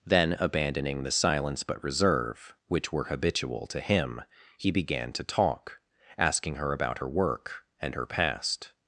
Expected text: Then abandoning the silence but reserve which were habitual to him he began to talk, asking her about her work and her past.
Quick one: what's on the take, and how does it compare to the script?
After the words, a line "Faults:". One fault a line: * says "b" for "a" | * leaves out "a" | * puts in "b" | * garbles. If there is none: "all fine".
Then abandoning the silence but reserve which were habitual to him he began to talk, asking her about her work and her past.
Faults:
all fine